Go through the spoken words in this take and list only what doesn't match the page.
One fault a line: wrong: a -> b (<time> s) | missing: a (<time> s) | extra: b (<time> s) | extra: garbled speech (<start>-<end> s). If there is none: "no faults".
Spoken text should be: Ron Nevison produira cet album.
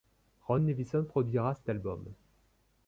no faults